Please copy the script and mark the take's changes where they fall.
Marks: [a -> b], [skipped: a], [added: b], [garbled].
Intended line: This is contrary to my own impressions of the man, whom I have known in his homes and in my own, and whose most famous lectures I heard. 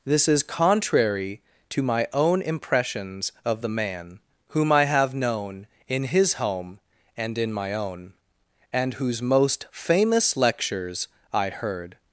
This is contrary to my own impressions of the man, whom I have known in his [homes -> home] and in my own, and whose most famous lectures I heard.